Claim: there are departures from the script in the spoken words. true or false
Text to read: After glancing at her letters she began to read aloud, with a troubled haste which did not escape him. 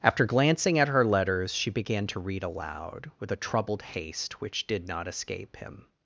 false